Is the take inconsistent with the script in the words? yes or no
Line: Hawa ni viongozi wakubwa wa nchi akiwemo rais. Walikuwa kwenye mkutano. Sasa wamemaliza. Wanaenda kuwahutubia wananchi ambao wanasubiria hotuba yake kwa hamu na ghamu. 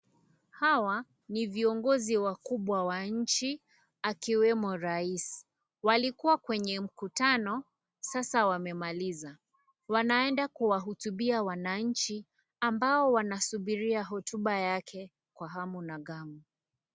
no